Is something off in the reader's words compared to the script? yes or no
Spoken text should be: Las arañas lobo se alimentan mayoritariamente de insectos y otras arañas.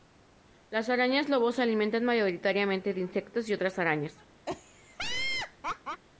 no